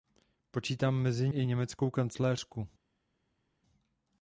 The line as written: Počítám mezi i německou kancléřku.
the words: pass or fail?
pass